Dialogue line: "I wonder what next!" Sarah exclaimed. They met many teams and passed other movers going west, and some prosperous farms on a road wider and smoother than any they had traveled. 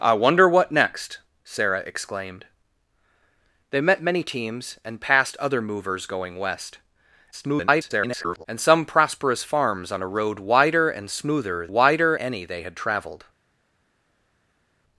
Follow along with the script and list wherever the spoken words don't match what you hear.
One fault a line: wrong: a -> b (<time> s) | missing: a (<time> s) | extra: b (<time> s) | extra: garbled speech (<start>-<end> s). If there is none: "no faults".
extra: garbled speech (7.3-8.5 s)
wrong: than -> wider (11.7 s)